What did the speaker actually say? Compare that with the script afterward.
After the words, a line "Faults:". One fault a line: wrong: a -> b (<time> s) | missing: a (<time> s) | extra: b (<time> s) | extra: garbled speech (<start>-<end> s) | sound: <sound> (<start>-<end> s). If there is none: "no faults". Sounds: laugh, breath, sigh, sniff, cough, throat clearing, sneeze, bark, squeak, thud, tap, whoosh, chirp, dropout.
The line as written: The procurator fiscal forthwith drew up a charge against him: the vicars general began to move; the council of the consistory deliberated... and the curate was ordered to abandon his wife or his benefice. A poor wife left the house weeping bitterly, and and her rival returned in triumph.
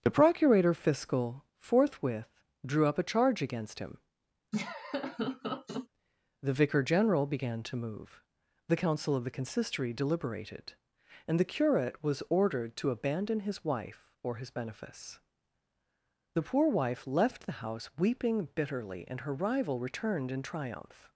The procurator fiscal forthwith drew up a charge against him: the vicar general began to move; the council of the consistory deliberated... and the curate was ordered to abandon his wife or his benefice. The poor wife left the house weeping bitterly, and her rival returned in triumph.
Faults:
sound: laugh (4.5-5.9 s)
wrong: vicars -> vicar (6.5 s)
wrong: A -> The (16.3 s)
missing: and (19.2 s)